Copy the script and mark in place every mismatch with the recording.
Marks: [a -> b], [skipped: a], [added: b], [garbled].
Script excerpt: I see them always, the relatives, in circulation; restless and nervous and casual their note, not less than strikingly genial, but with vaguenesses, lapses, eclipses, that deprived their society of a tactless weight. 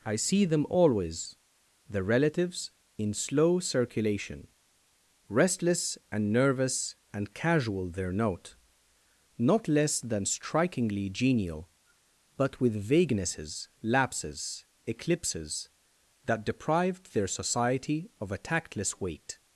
I see them always, the relatives, in [added: slow] circulation; restless and nervous and casual their note, not less than strikingly genial, but with vaguenesses, lapses, eclipses, that deprived their society of a tactless weight.